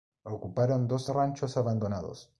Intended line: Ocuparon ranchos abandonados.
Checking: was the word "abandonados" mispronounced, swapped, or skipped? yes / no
no